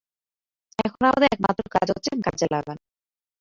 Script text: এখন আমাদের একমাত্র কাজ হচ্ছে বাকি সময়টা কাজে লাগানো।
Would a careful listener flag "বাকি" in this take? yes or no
yes